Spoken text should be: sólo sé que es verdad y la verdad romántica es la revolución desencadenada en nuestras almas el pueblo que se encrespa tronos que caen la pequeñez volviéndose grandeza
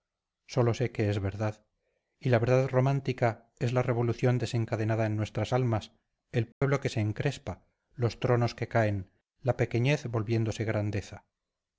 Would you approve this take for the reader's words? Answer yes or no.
no